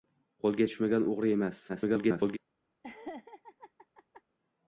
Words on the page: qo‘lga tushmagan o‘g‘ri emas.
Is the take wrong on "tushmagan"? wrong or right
right